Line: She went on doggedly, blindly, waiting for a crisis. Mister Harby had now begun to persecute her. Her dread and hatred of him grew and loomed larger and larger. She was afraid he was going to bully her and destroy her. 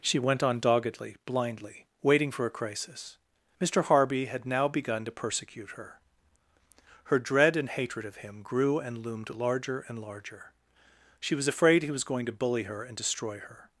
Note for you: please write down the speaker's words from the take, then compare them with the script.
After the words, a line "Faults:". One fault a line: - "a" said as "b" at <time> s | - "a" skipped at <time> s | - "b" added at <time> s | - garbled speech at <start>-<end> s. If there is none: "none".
She went on doggedly, blindly, waiting for a crisis. Mister Harby had now begun to persecute her. Her dread and hatred of him grew and loomed larger and larger. She was afraid he was going to bully her and destroy her.
Faults:
none